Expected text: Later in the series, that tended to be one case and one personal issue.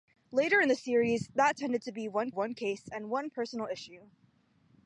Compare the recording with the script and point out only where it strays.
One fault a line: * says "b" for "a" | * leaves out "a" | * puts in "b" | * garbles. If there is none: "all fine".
* puts in "one"